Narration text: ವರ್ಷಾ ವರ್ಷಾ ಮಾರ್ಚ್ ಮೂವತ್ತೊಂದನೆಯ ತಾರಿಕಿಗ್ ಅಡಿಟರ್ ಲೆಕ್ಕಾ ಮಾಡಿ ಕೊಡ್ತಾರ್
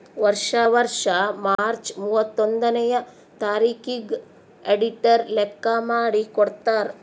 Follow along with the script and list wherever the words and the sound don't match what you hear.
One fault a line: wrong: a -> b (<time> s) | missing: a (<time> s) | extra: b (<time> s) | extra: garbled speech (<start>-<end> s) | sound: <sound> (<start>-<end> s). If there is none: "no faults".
sound: dropout (1.5-1.6 s)